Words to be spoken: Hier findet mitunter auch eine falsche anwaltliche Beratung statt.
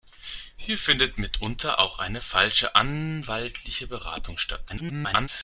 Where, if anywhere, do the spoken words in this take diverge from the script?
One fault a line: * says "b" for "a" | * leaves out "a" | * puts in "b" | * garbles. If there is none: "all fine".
* garbles